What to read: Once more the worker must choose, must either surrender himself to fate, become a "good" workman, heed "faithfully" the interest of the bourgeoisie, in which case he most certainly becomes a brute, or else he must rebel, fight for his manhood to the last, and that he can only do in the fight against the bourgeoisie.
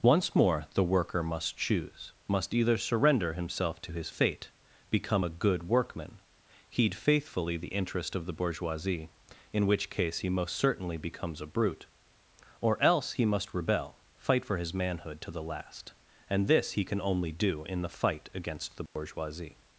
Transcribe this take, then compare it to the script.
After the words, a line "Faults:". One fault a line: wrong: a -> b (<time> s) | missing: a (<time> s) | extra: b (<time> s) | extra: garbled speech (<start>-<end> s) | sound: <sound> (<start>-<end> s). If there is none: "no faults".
Once more the worker must choose, must either surrender himself to his fate, become a "good" workman, heed "faithfully" the interest of the bourgeoisie, in which case he most certainly becomes a brute, or else he must rebel, fight for his manhood to the last, and this he can only do in the fight against the bourgeoisie.
Faults:
extra: his (3.9 s)
wrong: that -> this (16.5 s)
sound: dropout (18.9-19.0 s)